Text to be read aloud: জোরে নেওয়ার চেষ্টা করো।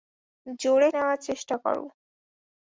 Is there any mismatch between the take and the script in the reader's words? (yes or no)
no